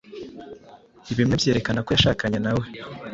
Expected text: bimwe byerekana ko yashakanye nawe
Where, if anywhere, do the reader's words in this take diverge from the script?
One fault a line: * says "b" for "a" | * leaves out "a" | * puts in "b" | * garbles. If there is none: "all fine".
all fine